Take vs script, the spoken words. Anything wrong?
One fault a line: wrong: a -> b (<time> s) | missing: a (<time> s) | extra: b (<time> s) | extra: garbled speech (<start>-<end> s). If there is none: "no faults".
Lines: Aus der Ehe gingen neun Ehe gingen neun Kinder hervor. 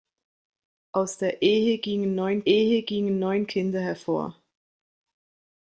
no faults